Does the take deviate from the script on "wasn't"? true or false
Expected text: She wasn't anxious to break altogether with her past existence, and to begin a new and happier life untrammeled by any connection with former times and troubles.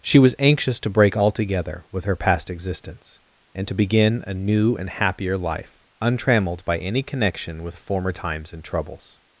true